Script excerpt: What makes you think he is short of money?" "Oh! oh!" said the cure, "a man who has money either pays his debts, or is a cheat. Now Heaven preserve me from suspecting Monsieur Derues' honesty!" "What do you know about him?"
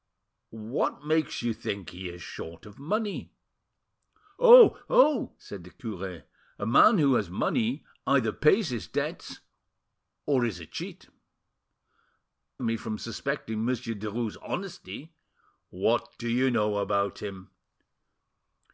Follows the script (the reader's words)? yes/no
no